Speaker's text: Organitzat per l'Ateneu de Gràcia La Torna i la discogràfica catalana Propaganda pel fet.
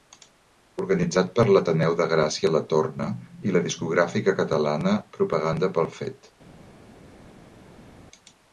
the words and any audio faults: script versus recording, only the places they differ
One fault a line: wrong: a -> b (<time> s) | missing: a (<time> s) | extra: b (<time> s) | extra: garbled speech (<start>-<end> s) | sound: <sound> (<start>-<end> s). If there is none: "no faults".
no faults